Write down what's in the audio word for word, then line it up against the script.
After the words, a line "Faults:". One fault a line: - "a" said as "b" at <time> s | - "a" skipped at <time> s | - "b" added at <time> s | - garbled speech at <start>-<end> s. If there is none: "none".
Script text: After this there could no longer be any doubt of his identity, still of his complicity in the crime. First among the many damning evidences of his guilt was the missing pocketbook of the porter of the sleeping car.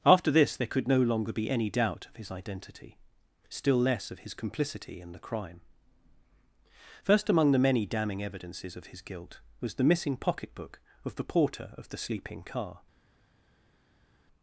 After this there could no longer be any doubt of his identity, still less of his complicity in the crime. First among the many damning evidences of his guilt was the missing pocketbook of the porter of the sleeping car.
Faults:
- "less" added at 3.8 s